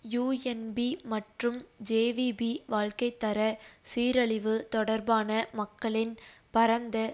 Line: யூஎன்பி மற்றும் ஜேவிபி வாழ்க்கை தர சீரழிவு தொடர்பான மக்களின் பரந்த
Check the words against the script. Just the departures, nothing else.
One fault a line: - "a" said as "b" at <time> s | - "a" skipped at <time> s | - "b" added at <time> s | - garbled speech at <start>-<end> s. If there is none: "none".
none